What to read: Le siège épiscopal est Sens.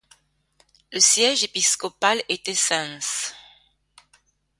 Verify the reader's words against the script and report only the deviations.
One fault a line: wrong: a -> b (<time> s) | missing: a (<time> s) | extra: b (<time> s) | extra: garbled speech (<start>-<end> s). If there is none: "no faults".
wrong: est -> était (2.3 s)